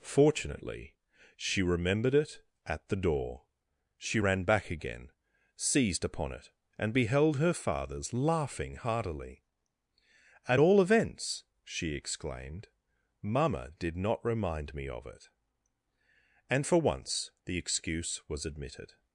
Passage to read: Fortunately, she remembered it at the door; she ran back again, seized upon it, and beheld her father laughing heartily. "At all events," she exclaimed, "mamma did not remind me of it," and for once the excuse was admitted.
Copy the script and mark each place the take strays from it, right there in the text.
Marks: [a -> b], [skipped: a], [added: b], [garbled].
Fortunately, she remembered it at the door; she ran back again, seized upon it, and beheld her [father -> fathers] laughing heartily. "At all events," she exclaimed, "mamma did not remind me of it," and for once the excuse was admitted.